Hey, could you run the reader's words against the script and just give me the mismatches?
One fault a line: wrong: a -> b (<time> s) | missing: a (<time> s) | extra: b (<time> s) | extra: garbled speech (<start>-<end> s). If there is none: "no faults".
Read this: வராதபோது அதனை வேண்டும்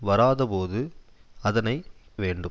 no faults